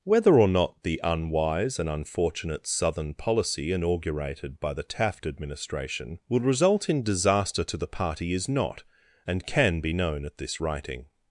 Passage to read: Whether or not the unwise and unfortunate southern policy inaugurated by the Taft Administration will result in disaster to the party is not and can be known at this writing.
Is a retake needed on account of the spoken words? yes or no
no